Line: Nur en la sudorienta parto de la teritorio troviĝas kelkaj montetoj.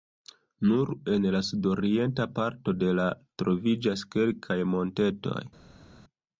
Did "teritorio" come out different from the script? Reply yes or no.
yes